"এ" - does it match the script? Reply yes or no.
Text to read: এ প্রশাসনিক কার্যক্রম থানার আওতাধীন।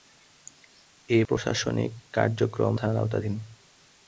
yes